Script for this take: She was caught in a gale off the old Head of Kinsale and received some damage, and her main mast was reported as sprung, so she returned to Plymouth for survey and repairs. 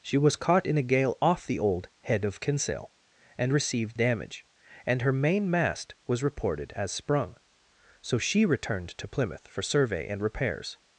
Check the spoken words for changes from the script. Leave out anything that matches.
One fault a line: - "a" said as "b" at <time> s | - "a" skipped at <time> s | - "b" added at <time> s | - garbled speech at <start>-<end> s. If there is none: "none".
- "some" skipped at 4.0 s